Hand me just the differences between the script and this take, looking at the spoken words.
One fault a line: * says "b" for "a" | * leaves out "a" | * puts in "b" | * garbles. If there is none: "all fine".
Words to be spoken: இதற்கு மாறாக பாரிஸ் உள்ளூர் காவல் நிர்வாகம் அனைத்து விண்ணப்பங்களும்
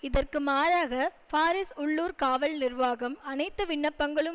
all fine